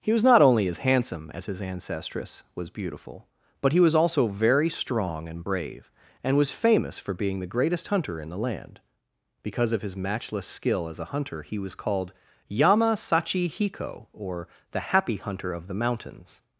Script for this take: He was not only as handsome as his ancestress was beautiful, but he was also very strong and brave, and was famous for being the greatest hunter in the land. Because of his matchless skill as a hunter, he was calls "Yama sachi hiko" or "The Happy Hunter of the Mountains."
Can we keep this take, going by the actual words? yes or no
no